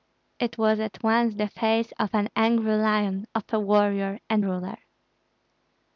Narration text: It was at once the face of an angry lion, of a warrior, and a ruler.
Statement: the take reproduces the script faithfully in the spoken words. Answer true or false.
false